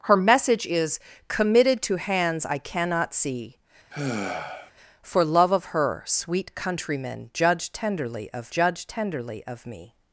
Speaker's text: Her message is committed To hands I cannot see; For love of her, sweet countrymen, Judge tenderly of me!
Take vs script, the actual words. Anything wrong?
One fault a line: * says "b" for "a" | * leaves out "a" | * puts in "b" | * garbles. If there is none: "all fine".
* puts in "Judge tenderly of"